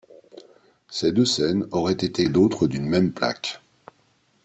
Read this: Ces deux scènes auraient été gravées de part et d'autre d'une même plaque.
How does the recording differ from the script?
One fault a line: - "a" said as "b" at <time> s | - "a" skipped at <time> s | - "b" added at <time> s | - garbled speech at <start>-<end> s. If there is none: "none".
- "gravées de part" skipped at 2.2 s